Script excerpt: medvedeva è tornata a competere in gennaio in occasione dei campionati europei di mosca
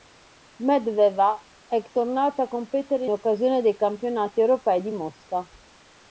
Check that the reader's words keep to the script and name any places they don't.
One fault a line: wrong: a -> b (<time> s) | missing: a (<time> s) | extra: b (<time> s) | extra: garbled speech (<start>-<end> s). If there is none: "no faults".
missing: in gennaio in (3.0 s)